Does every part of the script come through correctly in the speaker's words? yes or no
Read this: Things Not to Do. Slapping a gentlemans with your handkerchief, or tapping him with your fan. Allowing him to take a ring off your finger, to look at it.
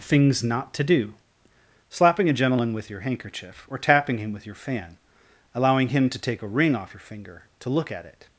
no